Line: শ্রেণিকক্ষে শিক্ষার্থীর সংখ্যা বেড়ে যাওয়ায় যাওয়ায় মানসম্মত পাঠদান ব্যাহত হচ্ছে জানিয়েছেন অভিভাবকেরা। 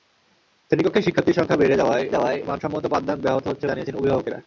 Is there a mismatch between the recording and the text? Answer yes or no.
no